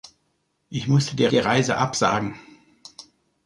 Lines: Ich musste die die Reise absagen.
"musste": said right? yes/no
yes